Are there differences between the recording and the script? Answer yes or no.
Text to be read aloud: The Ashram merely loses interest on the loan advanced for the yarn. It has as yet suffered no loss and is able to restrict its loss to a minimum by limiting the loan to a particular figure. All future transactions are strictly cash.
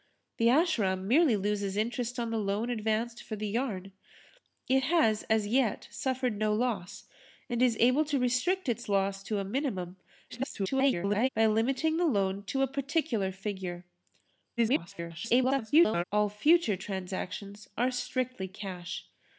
yes